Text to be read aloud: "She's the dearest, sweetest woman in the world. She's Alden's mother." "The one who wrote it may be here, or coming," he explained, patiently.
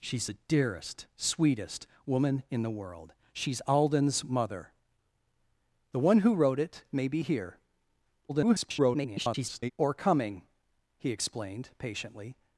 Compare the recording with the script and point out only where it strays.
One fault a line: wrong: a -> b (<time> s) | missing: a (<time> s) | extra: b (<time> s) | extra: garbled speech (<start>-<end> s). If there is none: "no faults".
extra: garbled speech (8.3-9.7 s)